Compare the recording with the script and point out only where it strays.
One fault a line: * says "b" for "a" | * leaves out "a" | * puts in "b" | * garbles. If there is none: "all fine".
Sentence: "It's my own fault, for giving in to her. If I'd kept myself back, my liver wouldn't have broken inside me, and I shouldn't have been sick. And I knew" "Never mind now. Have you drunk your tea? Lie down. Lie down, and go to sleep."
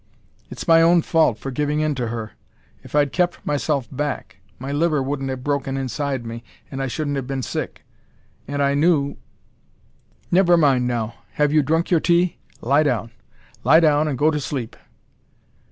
all fine